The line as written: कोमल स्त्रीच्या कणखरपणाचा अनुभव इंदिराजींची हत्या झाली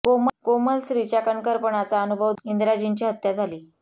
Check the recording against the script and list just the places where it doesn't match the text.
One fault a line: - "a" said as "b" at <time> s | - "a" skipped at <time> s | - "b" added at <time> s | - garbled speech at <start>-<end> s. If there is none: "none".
none